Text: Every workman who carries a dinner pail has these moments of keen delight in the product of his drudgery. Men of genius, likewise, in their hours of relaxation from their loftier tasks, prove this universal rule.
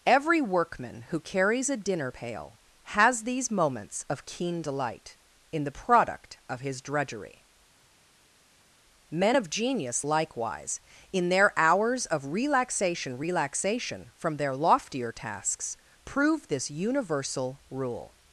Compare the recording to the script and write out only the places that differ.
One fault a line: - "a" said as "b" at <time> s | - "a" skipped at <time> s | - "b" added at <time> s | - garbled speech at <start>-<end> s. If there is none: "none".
- "relaxation" added at 13.2 s